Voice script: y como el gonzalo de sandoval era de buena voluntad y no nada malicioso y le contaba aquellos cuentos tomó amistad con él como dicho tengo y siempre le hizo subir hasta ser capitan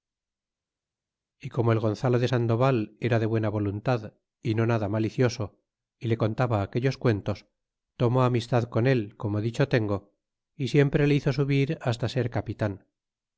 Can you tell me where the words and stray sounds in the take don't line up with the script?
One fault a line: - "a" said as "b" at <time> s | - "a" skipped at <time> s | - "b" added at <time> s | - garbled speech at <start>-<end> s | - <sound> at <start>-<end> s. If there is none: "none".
none